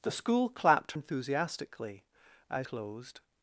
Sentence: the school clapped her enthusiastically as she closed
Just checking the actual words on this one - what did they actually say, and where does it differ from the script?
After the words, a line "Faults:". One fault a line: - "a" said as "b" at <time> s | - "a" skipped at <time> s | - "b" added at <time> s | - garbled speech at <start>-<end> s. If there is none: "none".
the school clapped enthusiastically as closed
Faults:
- "her" skipped at 0.9 s
- "she" skipped at 2.7 s